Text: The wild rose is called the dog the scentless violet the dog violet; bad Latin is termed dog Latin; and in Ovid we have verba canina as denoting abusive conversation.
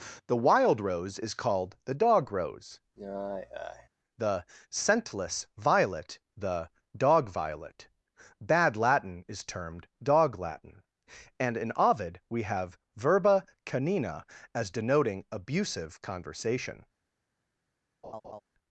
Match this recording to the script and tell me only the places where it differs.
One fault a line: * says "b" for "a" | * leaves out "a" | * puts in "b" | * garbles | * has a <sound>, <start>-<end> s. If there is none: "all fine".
* puts in "rose"
* has a sigh, 3.0-3.9 s
* has a laugh, 18.0-18.4 s